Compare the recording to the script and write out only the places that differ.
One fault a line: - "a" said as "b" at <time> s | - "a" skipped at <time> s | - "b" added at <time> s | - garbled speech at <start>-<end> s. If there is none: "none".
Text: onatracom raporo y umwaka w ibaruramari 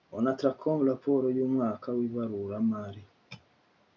none